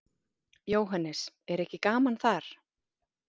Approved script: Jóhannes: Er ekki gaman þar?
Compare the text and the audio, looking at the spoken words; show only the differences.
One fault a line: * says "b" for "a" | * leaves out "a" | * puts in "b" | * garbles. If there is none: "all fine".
all fine